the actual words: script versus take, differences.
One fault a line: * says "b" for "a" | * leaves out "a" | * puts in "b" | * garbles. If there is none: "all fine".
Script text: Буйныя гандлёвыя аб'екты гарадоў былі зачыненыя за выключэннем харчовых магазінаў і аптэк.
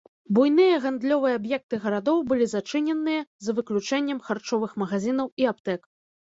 all fine